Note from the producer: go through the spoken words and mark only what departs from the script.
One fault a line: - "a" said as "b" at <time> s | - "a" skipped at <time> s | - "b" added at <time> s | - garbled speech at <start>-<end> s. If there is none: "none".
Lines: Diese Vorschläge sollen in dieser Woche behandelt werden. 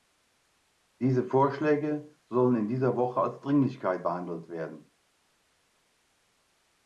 - "als Dringlichkeit" added at 3.2 s